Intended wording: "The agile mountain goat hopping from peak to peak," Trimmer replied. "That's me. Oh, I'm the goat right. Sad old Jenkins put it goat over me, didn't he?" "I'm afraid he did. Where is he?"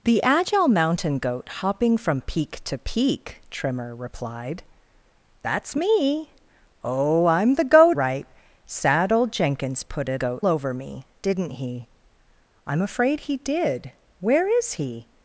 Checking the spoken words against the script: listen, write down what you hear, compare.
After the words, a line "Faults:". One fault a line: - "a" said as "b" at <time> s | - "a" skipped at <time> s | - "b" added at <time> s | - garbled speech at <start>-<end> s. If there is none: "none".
"The agile mountain goat hopping from peak to peak," Trimmer replied. "That's me. Oh, I'm the goat right. Sad old Jenkins put it goat over me, didn't he?" "I'm afraid he did. Where is he?"
Faults:
none